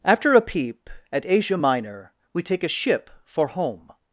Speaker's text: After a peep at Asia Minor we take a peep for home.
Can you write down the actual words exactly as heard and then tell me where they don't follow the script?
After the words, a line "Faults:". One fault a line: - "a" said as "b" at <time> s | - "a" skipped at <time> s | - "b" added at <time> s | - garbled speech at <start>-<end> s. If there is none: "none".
After a peep at Asia Minor we take a ship for home.
Faults:
- "peep" said as "ship" at 2.7 s